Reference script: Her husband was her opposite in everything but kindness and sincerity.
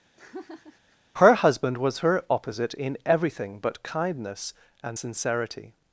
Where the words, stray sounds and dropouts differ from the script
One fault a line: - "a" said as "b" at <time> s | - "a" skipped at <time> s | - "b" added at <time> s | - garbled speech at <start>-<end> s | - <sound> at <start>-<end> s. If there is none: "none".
- laugh at 0.2-1.0 s